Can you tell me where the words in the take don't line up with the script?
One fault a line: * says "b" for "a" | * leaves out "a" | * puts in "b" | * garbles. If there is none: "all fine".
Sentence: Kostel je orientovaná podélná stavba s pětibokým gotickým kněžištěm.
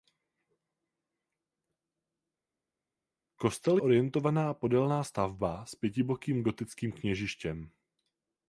* leaves out "je"